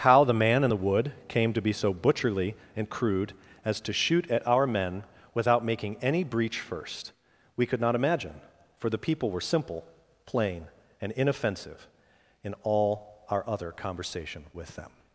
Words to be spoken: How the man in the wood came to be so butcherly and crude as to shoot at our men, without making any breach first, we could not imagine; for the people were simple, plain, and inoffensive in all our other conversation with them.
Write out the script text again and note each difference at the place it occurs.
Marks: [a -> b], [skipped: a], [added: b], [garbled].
How the man in the wood came to be so butcherly and crude as to shoot at our men, without making any breach first, we could not imagine; for the people were simple, plain, and inoffensive in all our other conversation with them.